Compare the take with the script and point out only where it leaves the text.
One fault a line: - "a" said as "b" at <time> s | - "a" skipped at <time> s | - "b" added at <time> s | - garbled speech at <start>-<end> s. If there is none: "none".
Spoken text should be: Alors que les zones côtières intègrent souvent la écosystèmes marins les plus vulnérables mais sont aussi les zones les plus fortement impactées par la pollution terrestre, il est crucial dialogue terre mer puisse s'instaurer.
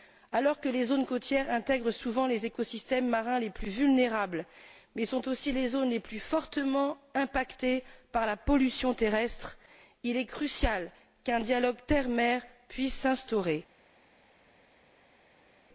- "la" said as "les" at 2.2 s
- "qu'un" added at 11.2 s